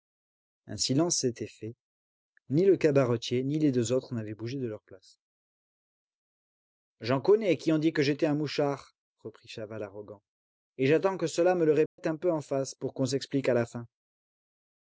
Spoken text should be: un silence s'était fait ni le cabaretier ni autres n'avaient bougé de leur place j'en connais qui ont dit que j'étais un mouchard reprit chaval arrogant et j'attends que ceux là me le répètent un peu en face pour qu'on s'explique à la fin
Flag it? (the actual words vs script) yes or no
yes